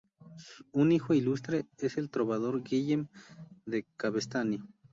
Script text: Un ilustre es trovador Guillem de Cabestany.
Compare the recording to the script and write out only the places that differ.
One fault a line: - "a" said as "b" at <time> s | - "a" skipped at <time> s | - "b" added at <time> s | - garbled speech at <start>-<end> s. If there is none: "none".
- "hijo" added at 0.9 s
- "el" added at 2.0 s